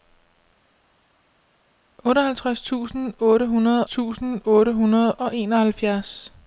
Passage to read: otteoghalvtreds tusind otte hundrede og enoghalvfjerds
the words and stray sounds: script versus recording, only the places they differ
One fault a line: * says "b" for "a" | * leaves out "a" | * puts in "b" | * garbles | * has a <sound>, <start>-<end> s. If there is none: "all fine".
* puts in "tusind otte hundrede"